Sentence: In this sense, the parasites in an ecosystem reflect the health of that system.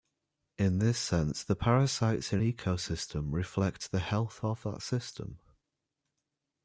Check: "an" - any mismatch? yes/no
yes